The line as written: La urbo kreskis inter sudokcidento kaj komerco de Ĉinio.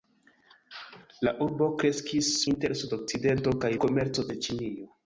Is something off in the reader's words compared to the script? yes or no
no